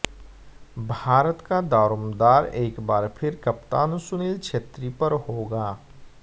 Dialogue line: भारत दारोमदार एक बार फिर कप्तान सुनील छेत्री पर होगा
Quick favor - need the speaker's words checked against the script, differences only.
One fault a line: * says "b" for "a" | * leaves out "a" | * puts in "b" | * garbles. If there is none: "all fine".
* puts in "का"